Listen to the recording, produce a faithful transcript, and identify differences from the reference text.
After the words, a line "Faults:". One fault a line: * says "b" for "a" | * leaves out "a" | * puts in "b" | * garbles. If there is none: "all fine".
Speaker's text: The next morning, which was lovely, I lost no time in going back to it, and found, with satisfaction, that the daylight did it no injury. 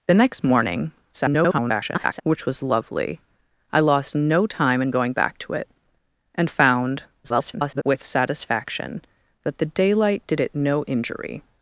The next morning, [garbled] which was lovely, I lost no time in going back to it, and found, [garbled] with satisfaction, that the daylight did it no injury.
Faults:
* garbles
* garbles